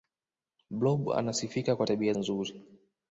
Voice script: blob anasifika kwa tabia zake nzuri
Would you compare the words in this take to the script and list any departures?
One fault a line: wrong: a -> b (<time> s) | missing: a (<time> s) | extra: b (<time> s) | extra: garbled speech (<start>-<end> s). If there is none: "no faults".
missing: zake (2.1 s)